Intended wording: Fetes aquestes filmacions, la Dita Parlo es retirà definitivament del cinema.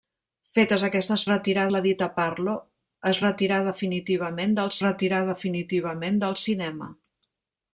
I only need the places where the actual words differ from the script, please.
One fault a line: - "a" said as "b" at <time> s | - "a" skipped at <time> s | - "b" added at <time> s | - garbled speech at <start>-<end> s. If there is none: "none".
- "filmacions" said as "retirà" at 1.3 s
- "retirà definitivament del" added at 4.9 s